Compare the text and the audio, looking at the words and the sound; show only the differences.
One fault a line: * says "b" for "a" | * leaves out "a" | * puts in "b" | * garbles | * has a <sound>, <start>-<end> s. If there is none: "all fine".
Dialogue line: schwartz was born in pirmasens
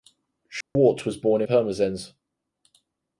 * has a dropout, 0.6-0.8 s
* leaves out "in"